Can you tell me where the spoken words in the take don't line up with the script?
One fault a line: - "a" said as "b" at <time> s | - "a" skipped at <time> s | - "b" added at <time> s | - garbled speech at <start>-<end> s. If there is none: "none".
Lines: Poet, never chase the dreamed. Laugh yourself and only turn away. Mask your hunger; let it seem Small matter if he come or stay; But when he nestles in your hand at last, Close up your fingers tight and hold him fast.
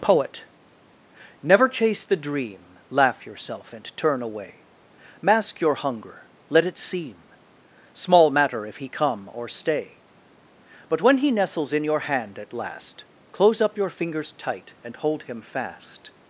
- "dreamed" said as "dream" at 2.2 s
- "only" skipped at 4.0 s